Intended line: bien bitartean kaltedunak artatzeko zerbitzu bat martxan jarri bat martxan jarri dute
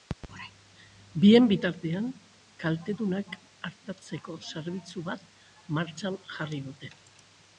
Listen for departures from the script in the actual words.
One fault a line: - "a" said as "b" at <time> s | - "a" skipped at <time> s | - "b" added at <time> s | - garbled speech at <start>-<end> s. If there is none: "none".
- "bat martxan jarri" skipped at 6.7 s